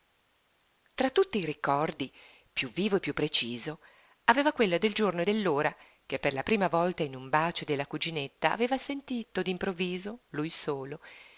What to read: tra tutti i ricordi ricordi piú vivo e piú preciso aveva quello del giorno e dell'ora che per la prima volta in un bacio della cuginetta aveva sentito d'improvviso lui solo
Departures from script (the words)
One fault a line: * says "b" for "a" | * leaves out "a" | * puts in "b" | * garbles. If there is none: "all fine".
* leaves out "ricordi"